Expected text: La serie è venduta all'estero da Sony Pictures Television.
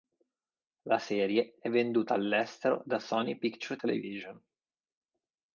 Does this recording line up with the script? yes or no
yes